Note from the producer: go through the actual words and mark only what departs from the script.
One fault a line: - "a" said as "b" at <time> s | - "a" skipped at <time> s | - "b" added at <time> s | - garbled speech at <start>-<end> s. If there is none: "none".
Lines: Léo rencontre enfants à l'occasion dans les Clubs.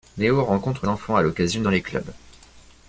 none